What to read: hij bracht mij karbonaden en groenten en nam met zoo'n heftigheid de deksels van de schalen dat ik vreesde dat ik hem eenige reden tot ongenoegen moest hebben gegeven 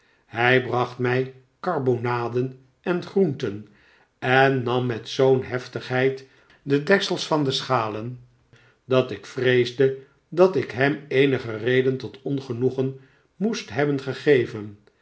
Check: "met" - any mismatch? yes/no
no